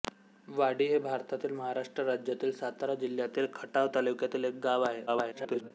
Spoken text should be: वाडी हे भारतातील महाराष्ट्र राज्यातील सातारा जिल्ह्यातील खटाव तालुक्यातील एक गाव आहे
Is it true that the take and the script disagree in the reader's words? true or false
true